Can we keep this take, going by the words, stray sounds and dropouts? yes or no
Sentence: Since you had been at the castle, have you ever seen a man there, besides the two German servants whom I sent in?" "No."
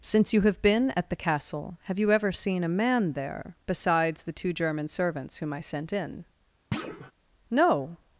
no